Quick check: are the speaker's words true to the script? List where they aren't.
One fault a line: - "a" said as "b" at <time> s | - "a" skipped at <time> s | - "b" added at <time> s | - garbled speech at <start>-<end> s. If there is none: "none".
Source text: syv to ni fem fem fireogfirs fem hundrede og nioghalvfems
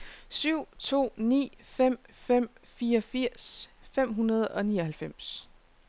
none